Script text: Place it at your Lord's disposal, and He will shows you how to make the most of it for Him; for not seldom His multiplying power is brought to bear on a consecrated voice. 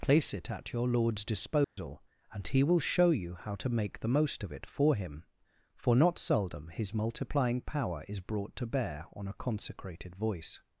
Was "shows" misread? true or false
true